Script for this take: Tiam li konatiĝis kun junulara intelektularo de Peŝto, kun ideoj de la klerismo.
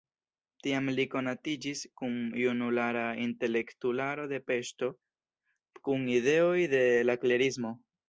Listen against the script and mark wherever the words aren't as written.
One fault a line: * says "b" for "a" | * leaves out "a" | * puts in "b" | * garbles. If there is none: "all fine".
all fine